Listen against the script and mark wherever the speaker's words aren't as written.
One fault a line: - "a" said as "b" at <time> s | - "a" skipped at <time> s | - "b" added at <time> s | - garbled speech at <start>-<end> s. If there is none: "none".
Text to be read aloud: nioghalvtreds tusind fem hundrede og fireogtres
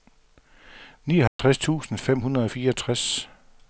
none